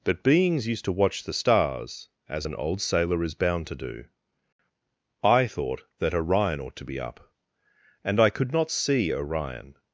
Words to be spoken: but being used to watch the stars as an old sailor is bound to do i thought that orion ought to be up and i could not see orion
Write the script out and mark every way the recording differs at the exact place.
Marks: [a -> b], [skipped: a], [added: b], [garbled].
but [being -> beings] used to watch the stars as an old sailor is bound to do i thought that orion ought to be up and i could not see orion